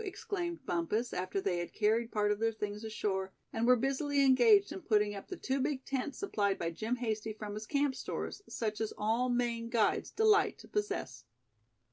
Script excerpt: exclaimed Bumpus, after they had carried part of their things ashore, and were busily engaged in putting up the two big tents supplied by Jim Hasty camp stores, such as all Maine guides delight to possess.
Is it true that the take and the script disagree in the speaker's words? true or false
true